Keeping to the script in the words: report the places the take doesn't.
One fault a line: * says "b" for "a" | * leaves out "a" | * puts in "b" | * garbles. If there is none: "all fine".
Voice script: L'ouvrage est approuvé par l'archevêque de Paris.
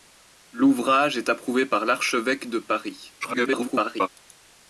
* garbles